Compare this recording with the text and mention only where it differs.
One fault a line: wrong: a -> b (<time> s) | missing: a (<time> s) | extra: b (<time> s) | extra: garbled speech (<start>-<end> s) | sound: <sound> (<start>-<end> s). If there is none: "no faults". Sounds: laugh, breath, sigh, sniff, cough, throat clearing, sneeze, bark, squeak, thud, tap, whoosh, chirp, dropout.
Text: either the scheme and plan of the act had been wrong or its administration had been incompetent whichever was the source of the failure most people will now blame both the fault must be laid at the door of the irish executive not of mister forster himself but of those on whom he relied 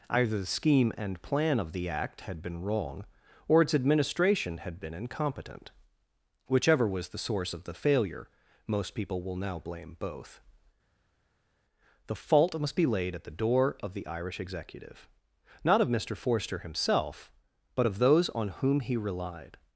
no faults